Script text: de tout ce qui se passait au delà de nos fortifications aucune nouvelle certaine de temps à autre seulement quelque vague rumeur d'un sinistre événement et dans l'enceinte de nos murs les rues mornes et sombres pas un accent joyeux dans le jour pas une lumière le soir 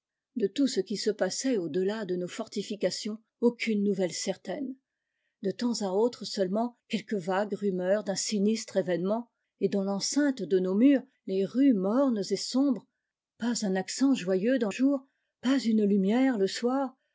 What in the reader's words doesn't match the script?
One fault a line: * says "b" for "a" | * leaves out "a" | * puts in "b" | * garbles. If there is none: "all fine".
* leaves out "le"